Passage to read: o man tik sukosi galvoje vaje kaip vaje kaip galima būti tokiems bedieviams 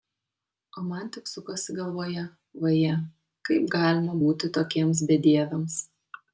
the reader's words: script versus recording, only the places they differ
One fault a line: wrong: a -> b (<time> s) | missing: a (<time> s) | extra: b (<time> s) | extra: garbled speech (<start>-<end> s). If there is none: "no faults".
missing: vaje kaip (3.7 s)